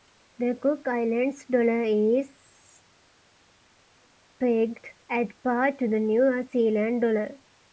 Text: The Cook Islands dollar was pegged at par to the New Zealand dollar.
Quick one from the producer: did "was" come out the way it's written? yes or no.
no